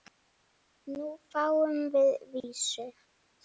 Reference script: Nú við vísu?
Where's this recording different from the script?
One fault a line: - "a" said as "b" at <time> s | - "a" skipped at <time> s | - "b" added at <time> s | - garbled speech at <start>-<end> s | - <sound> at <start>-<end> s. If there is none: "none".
- "fáum" added at 1.4 s
- dropout at 2.4-2.4 s